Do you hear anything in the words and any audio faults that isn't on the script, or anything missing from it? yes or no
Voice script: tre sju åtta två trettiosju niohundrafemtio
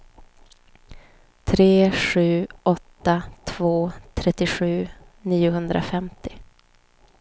no